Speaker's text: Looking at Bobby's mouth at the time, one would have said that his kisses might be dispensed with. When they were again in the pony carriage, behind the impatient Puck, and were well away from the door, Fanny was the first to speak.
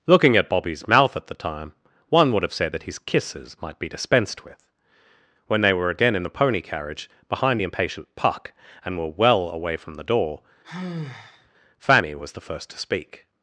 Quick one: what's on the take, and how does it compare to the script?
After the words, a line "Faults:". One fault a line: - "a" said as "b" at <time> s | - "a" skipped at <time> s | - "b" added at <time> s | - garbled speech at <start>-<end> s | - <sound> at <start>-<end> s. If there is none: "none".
Looking at Bobby's mouth at the time, one would have said that his kisses might be dispensed with. When they were again in the pony carriage, behind the impatient Puck, and were well away from the door, Fanny was the first to speak.
Faults:
- sigh at 10.6-11.5 s